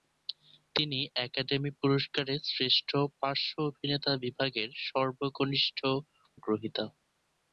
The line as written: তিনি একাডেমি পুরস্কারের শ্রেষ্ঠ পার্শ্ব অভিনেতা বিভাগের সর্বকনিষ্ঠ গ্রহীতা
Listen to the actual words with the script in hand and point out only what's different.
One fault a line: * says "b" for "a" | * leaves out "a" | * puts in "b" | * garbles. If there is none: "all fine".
all fine